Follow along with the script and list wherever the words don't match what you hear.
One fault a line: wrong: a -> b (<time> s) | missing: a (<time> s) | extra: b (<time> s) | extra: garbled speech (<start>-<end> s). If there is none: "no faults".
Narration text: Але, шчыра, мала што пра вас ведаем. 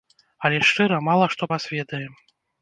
missing: пра (1.5 s)